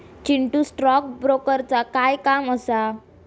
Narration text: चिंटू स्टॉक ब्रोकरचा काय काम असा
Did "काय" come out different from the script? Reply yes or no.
no